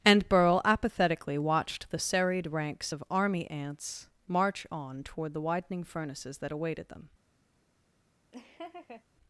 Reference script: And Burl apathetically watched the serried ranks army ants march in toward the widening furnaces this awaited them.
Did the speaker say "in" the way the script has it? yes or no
no